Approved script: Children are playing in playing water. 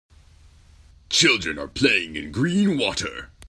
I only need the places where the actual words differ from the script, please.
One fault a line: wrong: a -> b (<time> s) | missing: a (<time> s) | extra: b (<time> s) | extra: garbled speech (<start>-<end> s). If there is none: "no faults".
wrong: playing -> green (2.3 s)